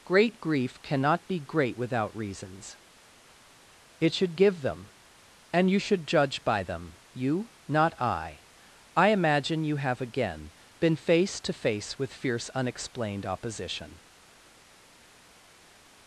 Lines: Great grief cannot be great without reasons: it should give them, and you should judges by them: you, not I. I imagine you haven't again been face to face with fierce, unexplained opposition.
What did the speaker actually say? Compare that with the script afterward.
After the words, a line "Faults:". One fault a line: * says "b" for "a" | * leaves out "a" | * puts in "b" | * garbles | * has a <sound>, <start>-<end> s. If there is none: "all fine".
Great grief cannot be great without reasons: it should give them, and you should judge by them: you, not I. I imagine you have again been face to face with fierce, unexplained opposition.
Faults:
* says "judge" for "judges"
* says "have" for "haven't"